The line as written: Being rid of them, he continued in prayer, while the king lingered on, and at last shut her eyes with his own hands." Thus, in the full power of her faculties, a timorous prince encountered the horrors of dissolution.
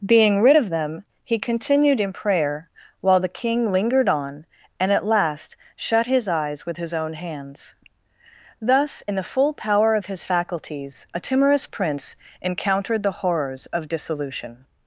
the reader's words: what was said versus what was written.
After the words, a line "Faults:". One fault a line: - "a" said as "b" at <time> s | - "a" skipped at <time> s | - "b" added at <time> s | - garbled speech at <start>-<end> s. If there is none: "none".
Being rid of them, he continued in prayer, while the king lingered on, and at last shut his eyes with his own hands." Thus, in the full power of his faculties, a timorous prince encountered the horrors of dissolution.
Faults:
- "her" said as "his" at 6.1 s
- "her" said as "his" at 10.0 s